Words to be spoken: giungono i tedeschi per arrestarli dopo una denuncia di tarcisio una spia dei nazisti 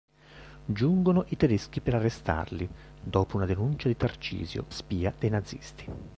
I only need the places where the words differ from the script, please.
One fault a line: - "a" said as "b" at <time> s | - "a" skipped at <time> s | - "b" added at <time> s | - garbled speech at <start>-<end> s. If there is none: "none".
- "una" skipped at 4.7 s